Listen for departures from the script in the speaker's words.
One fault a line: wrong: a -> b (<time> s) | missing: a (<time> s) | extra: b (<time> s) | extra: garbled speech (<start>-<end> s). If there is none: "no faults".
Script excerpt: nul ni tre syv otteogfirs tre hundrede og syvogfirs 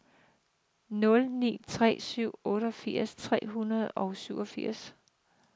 no faults